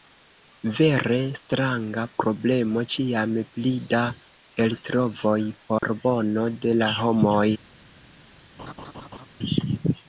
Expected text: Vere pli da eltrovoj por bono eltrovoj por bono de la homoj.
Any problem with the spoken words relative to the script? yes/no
yes